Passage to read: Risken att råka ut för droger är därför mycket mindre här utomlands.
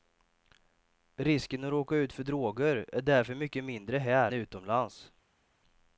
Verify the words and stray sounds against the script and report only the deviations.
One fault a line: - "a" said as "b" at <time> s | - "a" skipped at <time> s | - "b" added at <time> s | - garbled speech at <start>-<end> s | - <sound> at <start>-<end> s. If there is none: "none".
none